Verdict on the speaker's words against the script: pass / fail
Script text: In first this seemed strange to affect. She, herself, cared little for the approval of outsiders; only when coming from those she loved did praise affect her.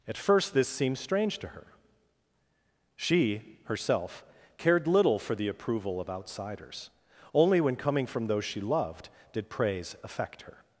fail